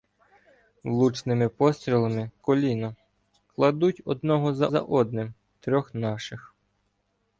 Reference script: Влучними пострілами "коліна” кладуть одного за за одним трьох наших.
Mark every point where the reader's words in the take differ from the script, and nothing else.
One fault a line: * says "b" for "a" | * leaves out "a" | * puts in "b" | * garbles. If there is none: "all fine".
all fine